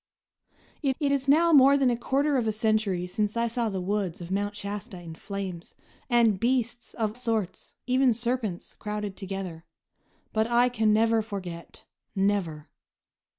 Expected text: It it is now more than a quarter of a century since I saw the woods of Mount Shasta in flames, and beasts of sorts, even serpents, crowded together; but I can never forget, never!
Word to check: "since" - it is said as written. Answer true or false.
true